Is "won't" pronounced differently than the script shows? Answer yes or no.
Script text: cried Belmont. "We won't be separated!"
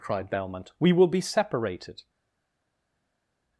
yes